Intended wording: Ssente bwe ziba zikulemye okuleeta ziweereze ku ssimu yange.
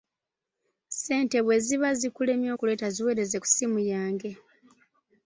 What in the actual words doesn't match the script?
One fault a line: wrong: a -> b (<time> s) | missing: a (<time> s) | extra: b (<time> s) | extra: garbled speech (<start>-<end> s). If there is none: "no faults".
no faults